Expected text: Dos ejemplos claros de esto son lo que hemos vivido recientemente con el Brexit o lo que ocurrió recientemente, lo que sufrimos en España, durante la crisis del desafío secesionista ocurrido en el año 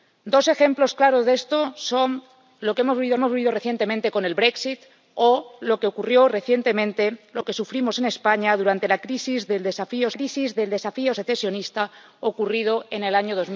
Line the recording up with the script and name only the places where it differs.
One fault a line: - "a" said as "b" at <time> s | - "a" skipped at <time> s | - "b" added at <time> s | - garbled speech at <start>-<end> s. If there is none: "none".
- "hemos vivido" added at 3.2 s
- "crisis del desafío" added at 10.1 s